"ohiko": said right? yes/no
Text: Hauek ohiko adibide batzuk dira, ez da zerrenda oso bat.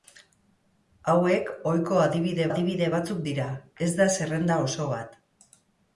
yes